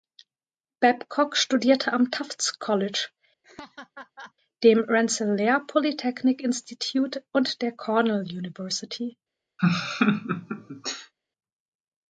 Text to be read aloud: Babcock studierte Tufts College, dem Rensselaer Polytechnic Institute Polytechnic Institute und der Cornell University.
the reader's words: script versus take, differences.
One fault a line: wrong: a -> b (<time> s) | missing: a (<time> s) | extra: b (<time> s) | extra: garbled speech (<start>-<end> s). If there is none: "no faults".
extra: am (1.9 s)
missing: Polytechnic Institute (7.2 s)